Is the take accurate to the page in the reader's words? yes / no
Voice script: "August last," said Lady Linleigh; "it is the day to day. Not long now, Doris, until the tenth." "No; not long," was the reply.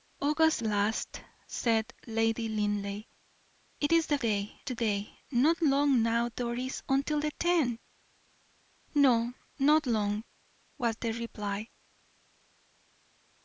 yes